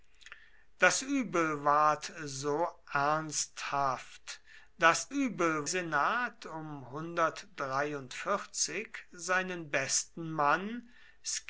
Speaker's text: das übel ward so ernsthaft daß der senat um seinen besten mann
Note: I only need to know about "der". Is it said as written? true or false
false